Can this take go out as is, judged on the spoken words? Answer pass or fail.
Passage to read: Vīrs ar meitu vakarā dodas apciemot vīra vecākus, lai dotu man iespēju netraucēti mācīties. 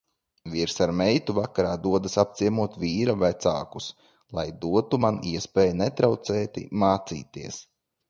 pass